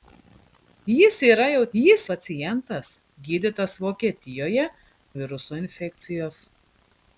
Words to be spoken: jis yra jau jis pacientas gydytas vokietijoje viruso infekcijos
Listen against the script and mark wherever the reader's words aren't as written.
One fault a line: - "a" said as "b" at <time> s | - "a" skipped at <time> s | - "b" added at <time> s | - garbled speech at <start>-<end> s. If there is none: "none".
none